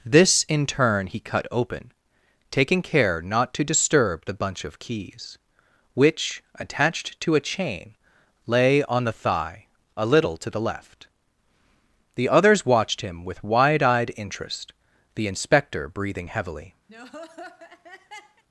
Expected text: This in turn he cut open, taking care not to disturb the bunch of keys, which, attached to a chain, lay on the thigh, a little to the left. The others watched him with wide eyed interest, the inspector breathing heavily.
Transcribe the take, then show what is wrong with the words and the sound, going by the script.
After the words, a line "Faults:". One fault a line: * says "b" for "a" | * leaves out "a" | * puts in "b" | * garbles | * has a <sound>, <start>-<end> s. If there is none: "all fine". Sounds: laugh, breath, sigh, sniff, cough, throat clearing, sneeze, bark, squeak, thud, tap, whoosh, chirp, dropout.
This in turn he cut open, taking care not to disturb the bunch of keys, which, attached to a chain, lay on the thigh, a little to the left. The others watched him with wide eyed interest, the inspector breathing heavily.
Faults:
* has a laugh, 16.9-18.4 s